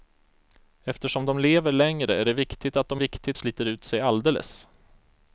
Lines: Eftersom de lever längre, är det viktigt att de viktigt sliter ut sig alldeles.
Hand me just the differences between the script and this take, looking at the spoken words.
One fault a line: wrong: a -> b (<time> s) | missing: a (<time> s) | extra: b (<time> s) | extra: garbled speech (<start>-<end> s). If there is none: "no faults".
no faults